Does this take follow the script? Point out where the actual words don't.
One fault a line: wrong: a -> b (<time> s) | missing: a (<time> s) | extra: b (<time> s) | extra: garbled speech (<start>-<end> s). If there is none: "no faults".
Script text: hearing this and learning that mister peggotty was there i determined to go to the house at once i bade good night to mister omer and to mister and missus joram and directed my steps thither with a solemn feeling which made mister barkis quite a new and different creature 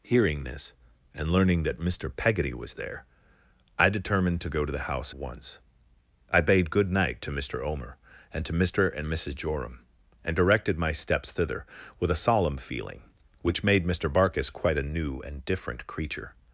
missing: at (5.1 s)